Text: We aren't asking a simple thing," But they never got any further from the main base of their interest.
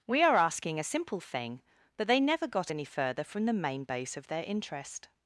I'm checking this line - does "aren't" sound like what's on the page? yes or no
no